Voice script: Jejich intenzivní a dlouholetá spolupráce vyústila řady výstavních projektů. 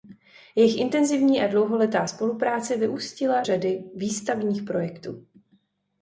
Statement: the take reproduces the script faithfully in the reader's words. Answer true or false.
true